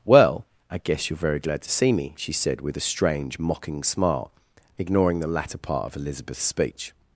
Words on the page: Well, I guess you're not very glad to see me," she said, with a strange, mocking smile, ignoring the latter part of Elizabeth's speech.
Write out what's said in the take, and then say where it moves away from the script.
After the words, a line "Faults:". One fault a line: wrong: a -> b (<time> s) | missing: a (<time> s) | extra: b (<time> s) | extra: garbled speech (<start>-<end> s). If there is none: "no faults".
Well, I guess you're very glad to see me," she said, with a strange, mocking smile, ignoring the latter part of Elizabeth's speech.
Faults:
missing: not (1.2 s)